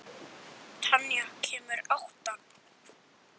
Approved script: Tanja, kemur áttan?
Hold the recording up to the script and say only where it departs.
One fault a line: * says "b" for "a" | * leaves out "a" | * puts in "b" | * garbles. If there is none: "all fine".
all fine